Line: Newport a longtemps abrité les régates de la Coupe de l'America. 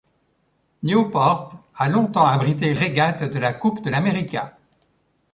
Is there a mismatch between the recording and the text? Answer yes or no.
yes